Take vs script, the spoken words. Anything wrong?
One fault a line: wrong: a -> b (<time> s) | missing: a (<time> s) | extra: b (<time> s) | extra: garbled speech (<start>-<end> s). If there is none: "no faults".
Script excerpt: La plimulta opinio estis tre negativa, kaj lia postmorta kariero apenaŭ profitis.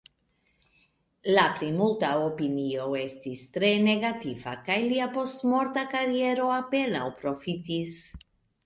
no faults